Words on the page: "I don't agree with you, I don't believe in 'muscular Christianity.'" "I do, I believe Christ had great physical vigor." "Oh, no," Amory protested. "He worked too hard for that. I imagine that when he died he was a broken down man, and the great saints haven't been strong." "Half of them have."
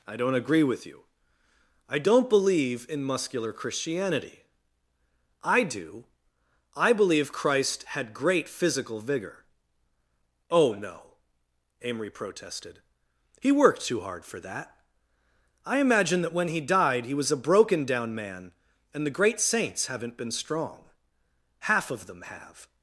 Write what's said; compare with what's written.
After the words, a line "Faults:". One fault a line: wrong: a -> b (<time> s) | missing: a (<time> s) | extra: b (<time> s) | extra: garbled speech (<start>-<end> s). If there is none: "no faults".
"I don't agree with you, I don't believe in 'muscular Christianity.'" "I do, I believe Christ had great physical vigor." "Oh, no," Amory protested. "He worked too hard for that. I imagine that when he died he was a broken down man, and the great saints haven't been strong." "Half of them have."
Faults:
no faults